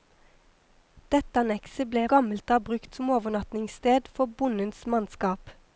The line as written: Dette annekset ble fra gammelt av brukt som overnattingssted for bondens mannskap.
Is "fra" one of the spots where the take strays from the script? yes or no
yes